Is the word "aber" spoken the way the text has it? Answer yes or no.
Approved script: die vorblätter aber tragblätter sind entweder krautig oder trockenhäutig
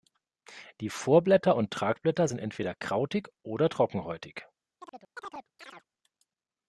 no